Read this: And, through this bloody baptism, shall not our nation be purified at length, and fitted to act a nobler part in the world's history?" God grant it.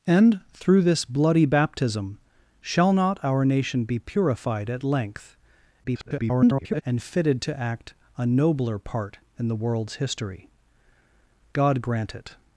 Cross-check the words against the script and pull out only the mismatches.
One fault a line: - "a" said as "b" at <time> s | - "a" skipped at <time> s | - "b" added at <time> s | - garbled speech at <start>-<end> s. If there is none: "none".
- garbled speech at 5.8-6.8 s